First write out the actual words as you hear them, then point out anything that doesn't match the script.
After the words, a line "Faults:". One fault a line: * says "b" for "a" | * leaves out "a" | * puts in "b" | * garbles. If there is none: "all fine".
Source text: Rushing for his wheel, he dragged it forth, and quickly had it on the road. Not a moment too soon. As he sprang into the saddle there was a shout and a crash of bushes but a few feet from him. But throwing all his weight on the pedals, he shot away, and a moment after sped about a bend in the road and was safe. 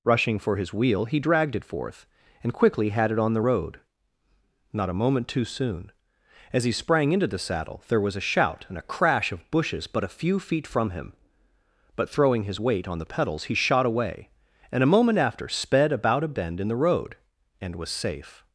Rushing for his wheel, he dragged it forth, and quickly had it on the road. Not a moment too soon. As he sprang into the saddle there was a shout and a crash of bushes but a few feet from him. But throwing his weight on the pedals, he shot away, and a moment after sped about a bend in the road and was safe.
Faults:
* leaves out "all"